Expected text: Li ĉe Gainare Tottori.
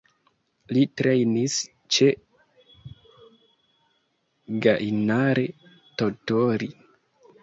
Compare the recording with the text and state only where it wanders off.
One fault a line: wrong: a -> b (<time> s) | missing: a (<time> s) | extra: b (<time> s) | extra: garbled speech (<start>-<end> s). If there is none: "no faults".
extra: trejnis (1.0 s)